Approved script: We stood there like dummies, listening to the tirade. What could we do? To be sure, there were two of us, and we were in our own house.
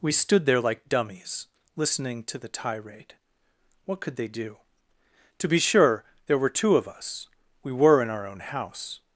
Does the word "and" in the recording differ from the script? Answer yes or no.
yes